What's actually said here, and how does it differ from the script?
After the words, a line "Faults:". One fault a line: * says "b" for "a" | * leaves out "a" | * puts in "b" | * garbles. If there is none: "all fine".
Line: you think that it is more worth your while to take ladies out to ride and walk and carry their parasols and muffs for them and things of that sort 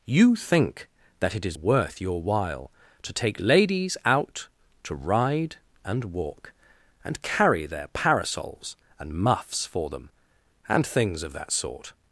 you think that it is worth your while to take ladies out to ride and walk and carry their parasols and muffs for them and things of that sort
Faults:
* leaves out "more"